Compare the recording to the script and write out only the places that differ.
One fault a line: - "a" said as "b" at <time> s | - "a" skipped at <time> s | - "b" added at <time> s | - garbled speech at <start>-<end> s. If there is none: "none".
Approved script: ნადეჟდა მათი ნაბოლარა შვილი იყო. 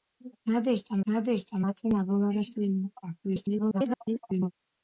- "ნადეჟდა" added at 1.1 s
- garbled speech at 3.2-4.5 s